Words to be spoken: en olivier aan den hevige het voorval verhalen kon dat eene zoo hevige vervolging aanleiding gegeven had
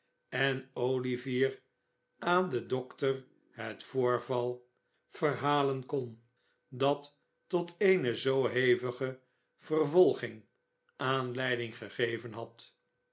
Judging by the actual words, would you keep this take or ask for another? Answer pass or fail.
fail